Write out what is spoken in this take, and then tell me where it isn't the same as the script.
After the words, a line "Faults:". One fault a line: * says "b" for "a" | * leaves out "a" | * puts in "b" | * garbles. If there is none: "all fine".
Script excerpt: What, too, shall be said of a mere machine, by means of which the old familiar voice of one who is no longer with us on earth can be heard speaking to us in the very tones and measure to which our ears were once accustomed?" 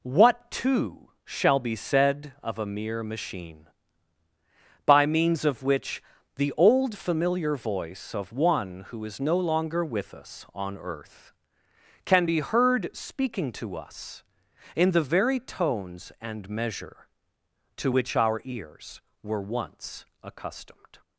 What, too, shall be said of a mere machine, by means of which the old familiar voice of one who is no longer with us on earth can be heard speaking to us in the very tones and measure to which our ears were once accustomed?"
Faults:
all fine